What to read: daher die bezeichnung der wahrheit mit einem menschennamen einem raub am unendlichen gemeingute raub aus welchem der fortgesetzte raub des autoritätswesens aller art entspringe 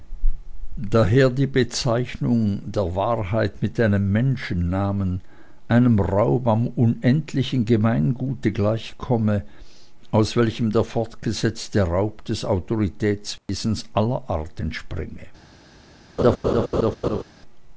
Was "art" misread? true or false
false